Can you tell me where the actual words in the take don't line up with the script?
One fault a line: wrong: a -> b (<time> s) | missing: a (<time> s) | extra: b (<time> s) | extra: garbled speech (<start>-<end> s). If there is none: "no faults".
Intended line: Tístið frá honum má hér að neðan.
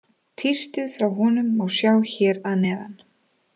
extra: sjá (1.8 s)